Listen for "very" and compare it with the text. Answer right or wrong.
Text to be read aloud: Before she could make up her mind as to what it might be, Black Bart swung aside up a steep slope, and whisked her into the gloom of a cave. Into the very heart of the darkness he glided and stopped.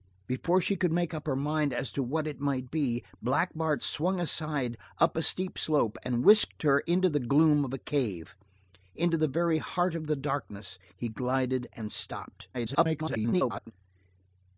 right